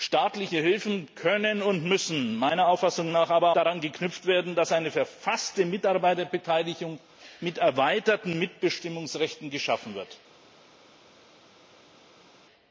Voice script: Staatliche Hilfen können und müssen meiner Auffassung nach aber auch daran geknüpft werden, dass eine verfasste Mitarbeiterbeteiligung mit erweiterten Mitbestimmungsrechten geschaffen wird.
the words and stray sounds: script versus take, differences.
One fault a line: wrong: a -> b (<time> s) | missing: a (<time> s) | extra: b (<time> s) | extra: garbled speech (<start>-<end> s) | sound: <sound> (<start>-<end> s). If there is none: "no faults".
missing: auch (3.5 s)